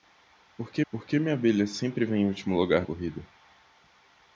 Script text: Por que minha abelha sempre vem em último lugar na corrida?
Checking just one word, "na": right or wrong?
wrong